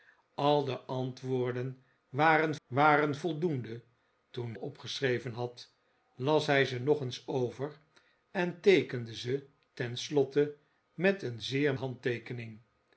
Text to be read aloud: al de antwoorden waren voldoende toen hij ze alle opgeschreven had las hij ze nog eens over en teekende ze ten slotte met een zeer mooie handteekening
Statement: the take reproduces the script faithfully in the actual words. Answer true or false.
false